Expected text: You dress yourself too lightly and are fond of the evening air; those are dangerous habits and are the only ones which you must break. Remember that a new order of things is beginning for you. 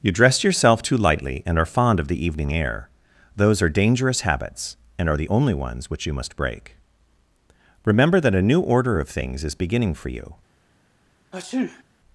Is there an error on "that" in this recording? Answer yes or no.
no